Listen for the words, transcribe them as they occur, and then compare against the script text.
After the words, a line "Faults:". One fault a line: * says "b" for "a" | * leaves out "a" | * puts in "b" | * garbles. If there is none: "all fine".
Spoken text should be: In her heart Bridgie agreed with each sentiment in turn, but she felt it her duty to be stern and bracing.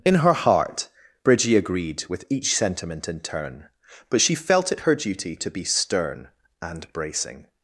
In her heart Bridgie agreed with each sentiment in turn, but she felt it her duty to be stern and bracing.
Faults:
all fine